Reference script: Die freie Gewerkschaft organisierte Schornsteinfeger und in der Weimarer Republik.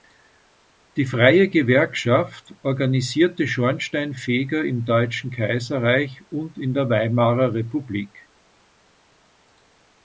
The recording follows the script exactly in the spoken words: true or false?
false